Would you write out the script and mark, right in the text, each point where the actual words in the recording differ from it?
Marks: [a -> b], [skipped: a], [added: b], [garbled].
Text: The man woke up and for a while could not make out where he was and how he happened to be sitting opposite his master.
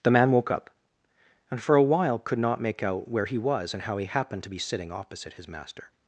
The man woke up and for a while could not make out where he was and how he happened to be sitting opposite his master.